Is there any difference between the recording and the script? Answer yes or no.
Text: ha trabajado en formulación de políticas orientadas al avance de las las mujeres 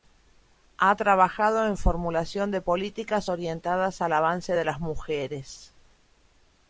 yes